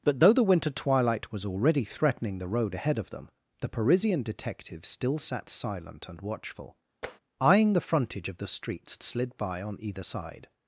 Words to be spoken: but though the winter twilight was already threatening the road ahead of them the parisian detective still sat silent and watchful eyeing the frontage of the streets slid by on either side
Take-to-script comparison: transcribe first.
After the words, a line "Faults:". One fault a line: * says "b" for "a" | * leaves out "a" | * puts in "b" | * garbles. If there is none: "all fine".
but though the winter twilight was already threatening the road ahead of them the parisian detective still sat silent and watchful eyeing the frontage of the streets slid by on either side
Faults:
all fine